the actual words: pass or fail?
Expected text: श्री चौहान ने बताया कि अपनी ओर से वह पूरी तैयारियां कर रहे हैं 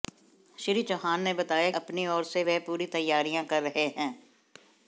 fail